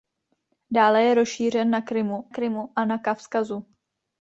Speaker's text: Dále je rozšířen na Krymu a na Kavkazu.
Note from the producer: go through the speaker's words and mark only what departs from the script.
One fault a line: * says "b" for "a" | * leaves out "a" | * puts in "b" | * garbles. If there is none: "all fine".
* puts in "Krymu"